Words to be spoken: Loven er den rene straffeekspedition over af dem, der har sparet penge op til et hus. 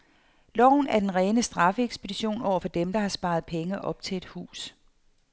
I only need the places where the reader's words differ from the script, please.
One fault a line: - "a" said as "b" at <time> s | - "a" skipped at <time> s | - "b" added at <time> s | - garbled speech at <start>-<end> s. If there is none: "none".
- "af" said as "for" at 2.6 s